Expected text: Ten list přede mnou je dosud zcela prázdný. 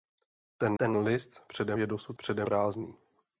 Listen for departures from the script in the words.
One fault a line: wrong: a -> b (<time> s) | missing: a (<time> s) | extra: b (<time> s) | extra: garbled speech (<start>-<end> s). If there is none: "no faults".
extra: ten (0.8 s)
missing: mnou (1.8 s)
wrong: zcela -> přede (2.2 s)